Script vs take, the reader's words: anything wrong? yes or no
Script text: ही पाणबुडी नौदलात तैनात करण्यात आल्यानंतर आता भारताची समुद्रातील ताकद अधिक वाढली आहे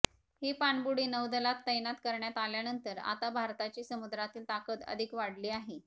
no